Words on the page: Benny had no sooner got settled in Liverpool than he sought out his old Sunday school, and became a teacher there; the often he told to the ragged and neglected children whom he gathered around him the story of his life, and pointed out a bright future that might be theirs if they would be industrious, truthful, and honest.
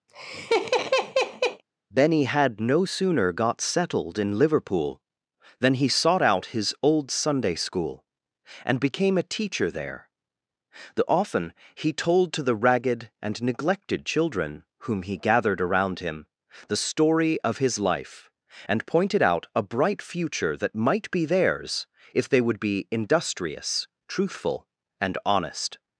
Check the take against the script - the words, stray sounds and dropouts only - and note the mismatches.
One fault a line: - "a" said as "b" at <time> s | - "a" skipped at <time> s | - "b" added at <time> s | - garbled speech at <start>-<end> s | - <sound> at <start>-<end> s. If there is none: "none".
- laugh at 0.1-1.6 s